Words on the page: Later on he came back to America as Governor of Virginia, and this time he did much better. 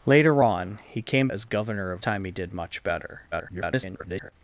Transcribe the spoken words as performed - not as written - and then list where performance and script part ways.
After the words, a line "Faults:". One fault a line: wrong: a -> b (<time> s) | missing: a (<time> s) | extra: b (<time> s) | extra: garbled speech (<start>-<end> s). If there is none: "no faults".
Later on he came as Governor of Time he did much better. [garbled]
Faults:
missing: back to America (1.3 s)
missing: Virginia and this (2.0 s)
extra: garbled speech (3.3-4.3 s)